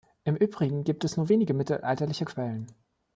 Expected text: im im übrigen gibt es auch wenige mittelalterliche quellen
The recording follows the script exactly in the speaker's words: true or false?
false